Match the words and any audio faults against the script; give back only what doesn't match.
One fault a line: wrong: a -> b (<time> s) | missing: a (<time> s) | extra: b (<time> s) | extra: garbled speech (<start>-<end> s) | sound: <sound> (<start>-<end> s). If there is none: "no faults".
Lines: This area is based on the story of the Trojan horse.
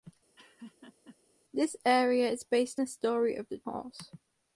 sound: laugh (0.4-1.2 s)
missing: on (2.8 s)
missing: Trojan (3.6 s)